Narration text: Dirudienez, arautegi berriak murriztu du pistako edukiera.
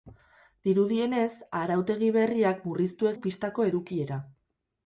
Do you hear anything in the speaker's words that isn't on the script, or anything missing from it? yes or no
no